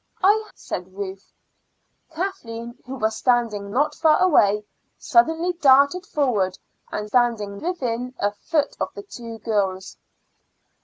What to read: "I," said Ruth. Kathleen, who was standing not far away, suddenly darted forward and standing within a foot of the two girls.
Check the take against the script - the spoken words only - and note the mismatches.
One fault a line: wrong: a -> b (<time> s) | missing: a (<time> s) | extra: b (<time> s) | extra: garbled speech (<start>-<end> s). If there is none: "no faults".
no faults